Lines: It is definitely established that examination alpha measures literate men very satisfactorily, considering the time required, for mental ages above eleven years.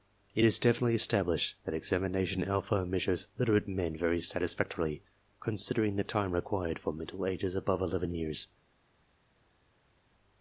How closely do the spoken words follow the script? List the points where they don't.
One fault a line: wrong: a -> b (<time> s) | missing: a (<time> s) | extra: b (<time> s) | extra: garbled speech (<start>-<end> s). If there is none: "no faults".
no faults